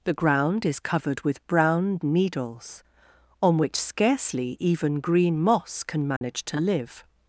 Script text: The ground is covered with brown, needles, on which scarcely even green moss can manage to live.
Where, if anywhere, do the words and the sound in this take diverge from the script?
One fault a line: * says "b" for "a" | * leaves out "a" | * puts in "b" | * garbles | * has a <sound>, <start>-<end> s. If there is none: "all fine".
* has a dropout, 6.2-6.2 s